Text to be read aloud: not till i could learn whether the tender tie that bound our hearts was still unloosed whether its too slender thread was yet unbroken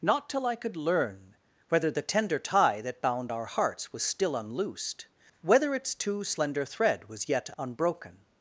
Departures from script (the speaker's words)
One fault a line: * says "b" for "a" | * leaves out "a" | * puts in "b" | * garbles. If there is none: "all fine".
all fine